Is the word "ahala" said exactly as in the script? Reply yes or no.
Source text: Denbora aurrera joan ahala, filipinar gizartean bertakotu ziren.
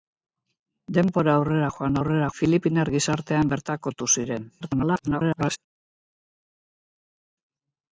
no